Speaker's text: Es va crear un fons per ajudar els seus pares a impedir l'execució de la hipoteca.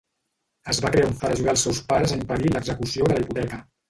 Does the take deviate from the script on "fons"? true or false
true